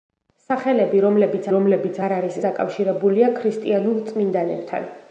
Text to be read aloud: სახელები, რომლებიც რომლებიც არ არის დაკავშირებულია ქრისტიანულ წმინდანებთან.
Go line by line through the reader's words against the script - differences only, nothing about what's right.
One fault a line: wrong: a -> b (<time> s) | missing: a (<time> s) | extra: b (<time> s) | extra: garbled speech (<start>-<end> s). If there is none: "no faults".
no faults